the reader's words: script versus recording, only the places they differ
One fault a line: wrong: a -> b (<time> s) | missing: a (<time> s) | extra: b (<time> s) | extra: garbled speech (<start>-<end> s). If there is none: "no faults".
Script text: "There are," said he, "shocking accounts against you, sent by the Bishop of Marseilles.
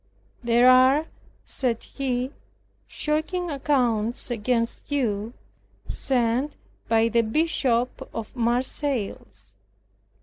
no faults